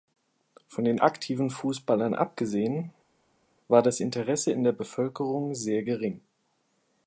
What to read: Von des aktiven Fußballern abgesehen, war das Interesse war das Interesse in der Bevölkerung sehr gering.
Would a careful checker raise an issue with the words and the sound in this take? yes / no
yes